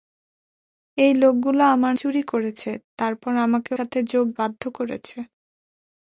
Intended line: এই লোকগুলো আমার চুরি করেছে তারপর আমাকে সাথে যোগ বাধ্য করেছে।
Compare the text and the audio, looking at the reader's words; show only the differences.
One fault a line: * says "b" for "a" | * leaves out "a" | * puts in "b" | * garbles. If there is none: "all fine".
all fine